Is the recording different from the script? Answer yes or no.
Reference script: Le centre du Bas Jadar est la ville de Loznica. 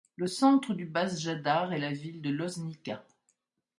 no